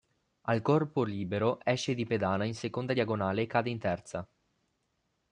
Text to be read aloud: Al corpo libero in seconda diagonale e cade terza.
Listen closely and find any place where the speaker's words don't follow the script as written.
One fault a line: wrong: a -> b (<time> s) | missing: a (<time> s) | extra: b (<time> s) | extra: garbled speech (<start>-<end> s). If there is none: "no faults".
extra: esce di pedana (1.6 s)
extra: in (3.7 s)